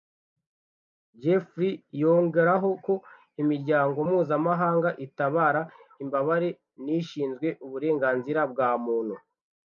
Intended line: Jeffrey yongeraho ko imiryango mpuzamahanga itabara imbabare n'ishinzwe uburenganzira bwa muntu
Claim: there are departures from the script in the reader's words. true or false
false